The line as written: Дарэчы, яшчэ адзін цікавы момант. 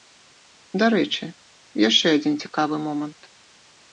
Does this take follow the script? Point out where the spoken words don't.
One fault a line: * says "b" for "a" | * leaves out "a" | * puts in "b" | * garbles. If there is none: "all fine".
all fine